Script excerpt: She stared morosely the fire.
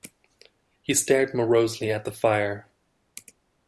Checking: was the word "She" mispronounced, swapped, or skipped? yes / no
yes